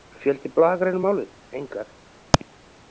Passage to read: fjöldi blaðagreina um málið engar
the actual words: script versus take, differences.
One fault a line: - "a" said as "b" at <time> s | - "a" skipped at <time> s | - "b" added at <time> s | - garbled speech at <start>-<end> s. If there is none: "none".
none